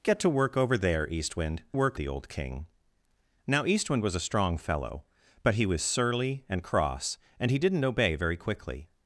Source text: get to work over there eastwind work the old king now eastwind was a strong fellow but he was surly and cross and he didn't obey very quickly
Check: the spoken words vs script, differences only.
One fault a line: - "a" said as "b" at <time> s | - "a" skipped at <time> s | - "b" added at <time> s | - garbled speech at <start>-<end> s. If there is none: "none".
none